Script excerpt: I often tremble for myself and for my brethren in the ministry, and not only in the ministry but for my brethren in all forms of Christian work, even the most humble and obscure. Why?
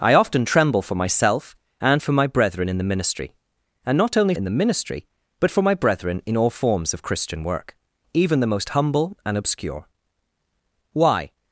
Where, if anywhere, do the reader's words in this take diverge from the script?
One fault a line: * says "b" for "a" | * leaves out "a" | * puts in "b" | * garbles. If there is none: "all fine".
all fine